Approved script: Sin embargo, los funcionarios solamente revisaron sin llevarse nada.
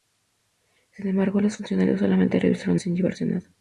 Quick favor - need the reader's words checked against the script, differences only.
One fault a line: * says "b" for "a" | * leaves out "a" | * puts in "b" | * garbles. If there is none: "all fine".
all fine